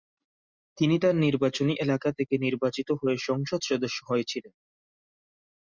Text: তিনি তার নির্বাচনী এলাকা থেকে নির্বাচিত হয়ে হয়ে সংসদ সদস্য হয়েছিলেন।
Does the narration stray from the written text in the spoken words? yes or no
yes